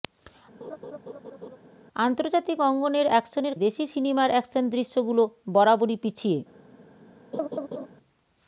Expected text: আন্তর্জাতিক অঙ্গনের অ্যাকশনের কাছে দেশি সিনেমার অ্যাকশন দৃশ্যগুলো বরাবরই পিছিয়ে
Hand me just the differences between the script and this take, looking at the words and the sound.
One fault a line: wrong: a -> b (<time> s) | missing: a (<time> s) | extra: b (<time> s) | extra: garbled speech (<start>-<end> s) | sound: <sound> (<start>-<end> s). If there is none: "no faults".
sound: laugh (0.6-1.6 s)
missing: কাছে (3.5 s)
sound: laugh (7.3-7.9 s)